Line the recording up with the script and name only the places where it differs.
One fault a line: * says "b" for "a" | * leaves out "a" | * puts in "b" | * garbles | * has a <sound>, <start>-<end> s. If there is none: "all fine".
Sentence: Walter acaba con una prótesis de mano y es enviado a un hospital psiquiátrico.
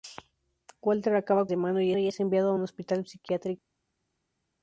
* leaves out "con una prótesis"
* puts in "y"